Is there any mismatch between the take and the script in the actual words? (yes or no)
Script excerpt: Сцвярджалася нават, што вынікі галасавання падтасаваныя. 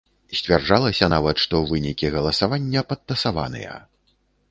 no